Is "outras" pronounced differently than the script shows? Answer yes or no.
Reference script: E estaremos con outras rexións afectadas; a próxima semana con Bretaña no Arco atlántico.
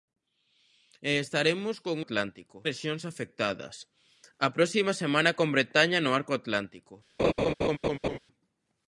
yes